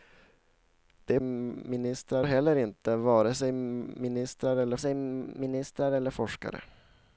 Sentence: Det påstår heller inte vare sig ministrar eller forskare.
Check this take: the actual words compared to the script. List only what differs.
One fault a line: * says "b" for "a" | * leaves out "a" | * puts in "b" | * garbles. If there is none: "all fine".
* says "ministrar" for "påstår"
* puts in "sig ministrar eller"